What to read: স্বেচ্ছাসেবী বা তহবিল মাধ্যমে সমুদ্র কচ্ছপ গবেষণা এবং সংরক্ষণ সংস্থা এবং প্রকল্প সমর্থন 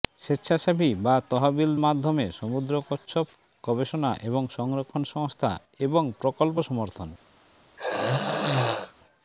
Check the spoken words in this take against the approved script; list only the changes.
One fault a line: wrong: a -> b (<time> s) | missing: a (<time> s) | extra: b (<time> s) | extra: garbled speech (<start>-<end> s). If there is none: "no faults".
no faults